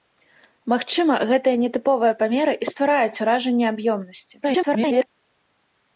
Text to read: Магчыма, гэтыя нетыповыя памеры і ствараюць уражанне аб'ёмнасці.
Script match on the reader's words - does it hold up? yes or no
no